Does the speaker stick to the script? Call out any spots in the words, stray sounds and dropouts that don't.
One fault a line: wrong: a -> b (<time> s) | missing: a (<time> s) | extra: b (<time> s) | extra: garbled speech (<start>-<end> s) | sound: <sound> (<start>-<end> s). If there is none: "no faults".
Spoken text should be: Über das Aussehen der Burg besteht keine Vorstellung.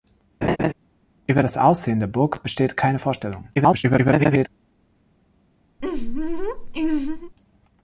sound: laugh (0.4-0.7 s)
extra: garbled speech (3.5-4.5 s)
sound: laugh (5.8-7.4 s)